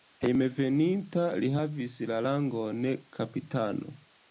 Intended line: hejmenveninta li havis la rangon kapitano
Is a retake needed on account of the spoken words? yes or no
no